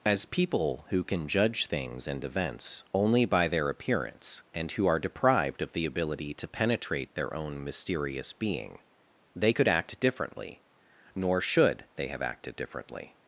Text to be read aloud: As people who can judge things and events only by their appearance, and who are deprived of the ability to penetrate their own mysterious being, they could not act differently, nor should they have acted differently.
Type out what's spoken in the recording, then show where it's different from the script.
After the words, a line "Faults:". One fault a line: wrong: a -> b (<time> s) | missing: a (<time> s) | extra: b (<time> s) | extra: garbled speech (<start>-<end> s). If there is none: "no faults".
As people who can judge things and events only by their appearance, and who are deprived of the ability to penetrate their own mysterious being, they could act differently, nor should they have acted differently.
Faults:
missing: not (9.7 s)